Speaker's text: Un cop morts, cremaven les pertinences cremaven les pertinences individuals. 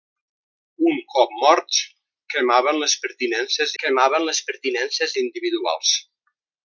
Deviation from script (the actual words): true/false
false